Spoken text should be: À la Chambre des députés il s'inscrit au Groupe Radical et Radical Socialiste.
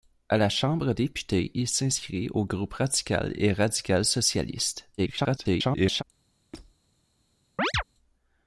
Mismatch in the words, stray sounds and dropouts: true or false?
true